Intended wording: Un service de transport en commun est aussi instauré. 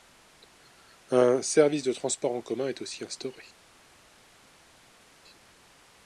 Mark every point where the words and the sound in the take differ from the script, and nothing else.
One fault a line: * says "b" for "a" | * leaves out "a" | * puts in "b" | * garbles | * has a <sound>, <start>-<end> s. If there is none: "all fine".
all fine